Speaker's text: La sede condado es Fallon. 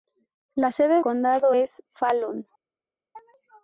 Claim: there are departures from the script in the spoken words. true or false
false